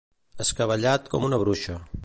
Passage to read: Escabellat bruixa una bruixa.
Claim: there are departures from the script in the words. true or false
true